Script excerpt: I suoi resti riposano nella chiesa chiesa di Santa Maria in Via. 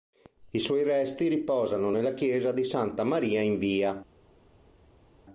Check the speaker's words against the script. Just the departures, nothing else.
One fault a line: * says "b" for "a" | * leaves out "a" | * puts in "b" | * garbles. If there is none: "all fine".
* leaves out "chiesa"